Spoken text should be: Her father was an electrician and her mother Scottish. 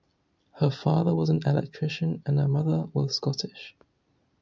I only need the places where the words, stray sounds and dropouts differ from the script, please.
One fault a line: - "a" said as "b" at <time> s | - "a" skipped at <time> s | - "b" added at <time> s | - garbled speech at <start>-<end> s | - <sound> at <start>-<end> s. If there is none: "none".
- "was" added at 2.9 s